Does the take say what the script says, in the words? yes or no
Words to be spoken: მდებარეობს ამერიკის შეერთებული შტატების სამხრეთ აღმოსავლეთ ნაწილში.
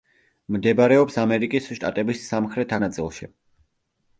no